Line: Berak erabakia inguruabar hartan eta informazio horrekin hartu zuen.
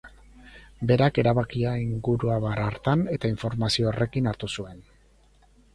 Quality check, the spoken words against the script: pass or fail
pass